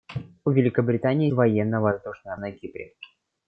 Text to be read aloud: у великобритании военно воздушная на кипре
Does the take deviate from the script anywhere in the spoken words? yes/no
no